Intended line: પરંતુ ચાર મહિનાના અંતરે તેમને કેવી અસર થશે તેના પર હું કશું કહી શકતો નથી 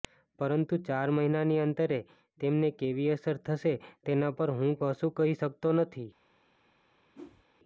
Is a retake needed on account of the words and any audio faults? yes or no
yes